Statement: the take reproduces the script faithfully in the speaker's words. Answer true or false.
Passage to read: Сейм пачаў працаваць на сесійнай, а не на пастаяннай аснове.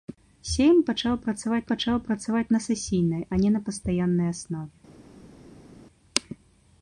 false